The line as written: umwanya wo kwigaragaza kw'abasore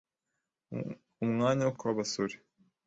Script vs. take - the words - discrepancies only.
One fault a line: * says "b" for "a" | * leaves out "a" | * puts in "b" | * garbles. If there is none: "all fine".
* leaves out "kwigaragaza"